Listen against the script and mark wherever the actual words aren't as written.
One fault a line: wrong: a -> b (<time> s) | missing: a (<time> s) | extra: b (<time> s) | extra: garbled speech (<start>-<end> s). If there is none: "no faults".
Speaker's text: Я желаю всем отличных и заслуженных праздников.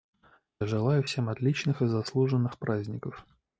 no faults